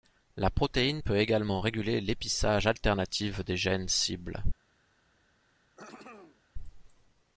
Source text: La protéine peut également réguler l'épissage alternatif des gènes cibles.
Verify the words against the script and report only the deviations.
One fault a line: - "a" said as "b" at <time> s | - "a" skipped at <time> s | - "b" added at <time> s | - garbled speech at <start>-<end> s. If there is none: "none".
none